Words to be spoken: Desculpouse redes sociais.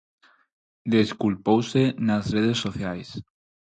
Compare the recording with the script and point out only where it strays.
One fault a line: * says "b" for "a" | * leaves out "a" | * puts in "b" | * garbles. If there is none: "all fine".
* puts in "nas"